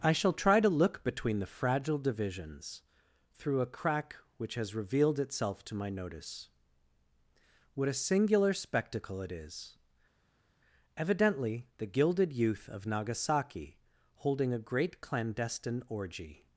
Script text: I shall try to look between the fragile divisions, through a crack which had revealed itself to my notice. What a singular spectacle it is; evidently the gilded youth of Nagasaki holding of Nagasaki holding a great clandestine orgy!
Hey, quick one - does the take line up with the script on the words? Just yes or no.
no